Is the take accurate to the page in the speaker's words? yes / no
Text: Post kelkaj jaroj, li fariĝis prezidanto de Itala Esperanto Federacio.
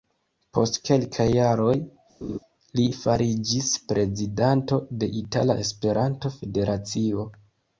yes